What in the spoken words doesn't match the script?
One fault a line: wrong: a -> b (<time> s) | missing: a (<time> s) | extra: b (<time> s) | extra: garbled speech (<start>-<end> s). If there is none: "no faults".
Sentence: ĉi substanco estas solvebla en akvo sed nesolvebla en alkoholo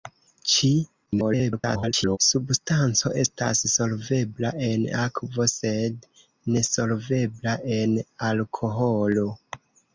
extra: garbled speech (1.1-2.2 s)